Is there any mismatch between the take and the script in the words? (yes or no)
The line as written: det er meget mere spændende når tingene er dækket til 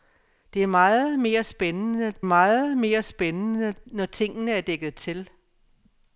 yes